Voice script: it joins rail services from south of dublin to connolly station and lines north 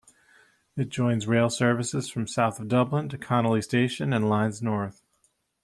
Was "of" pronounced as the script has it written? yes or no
yes